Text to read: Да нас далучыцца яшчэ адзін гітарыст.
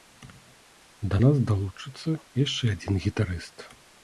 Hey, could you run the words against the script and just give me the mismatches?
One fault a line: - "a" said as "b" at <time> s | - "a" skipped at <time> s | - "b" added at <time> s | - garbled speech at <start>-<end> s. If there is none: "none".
none